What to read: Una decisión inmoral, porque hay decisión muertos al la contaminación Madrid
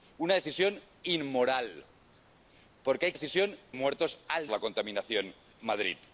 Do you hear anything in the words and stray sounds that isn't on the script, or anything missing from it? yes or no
no